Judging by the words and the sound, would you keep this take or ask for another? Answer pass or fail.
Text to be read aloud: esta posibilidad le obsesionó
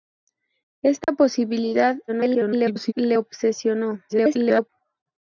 fail